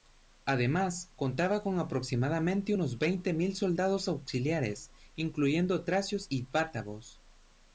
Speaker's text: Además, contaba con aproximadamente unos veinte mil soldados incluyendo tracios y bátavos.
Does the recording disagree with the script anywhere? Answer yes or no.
yes